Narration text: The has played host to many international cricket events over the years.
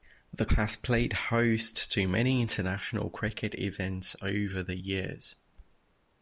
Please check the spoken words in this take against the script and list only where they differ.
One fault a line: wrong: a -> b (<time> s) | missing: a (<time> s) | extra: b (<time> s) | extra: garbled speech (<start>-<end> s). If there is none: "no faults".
no faults